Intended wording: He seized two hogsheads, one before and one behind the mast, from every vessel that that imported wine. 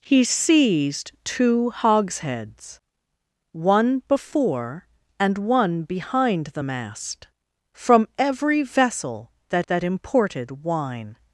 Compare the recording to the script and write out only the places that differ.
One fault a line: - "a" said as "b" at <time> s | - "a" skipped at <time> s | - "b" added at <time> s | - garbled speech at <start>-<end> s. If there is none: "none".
none